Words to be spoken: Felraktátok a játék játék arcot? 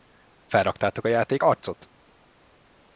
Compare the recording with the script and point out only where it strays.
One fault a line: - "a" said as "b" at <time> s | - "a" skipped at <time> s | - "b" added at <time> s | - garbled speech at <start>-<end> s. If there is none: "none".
- "játék" skipped at 1.4 s